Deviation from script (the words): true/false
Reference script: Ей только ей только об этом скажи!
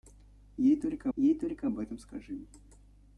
false